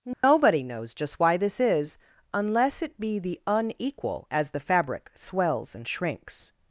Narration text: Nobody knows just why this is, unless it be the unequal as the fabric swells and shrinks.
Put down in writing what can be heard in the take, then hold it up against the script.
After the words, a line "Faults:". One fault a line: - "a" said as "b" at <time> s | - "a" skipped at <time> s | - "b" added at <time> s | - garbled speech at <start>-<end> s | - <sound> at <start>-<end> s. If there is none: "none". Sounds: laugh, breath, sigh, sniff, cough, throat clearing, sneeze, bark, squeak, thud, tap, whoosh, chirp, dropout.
Nobody knows just why this is, unless it be the unequal as the fabric swells and shrinks.
Faults:
- dropout at 0.1-0.2 s